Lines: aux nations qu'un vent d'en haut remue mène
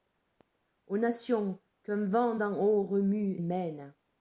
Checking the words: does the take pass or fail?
pass